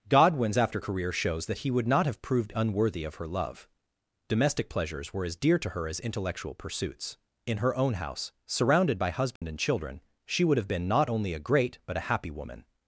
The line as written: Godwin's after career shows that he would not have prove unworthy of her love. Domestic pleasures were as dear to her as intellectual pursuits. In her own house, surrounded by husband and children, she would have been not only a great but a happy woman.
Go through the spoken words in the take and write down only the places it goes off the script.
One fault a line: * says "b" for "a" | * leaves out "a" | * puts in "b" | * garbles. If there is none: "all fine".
* says "proved" for "prove"